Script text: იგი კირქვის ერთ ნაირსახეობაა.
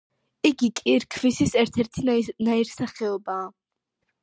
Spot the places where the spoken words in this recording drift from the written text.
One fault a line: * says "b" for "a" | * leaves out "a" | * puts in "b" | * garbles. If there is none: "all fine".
* puts in "ერთი"